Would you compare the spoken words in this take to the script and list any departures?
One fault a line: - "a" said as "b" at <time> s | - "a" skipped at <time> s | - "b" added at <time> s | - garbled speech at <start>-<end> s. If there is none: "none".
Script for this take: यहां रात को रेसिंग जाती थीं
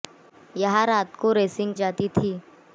none